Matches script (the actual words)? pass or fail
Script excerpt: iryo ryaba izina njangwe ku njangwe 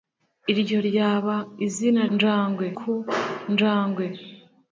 pass